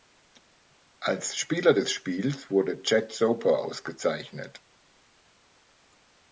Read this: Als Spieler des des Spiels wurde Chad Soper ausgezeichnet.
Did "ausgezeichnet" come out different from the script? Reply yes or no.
no